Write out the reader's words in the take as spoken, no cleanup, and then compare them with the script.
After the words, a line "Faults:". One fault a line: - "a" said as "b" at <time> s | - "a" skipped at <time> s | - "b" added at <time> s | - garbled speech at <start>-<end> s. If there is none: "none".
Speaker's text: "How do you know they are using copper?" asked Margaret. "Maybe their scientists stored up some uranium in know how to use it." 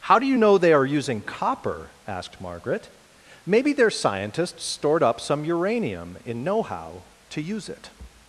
"How do you know they are using copper?" asked Margaret. "Maybe their scientists stored up some uranium in know how to use it."
Faults:
none